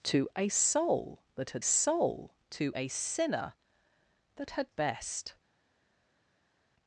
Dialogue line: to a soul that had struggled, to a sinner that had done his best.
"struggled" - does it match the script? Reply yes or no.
no